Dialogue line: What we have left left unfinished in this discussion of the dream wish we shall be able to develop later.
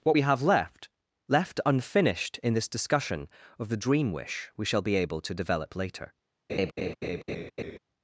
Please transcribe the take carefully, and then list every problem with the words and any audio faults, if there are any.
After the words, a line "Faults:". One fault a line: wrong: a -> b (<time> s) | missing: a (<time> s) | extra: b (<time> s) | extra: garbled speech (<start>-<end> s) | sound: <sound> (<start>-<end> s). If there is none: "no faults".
What we have left left unfinished in this discussion of the dream wish we shall be able to develop later.
Faults:
sound: laugh (6.5-7.8 s)